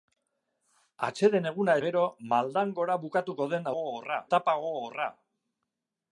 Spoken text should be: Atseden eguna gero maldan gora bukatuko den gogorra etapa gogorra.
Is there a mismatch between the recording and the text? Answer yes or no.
no